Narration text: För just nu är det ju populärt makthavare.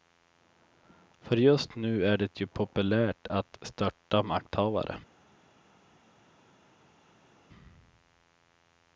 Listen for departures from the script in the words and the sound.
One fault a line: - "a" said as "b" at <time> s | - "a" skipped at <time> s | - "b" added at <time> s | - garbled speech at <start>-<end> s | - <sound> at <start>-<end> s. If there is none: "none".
- "att störta" added at 3.3 s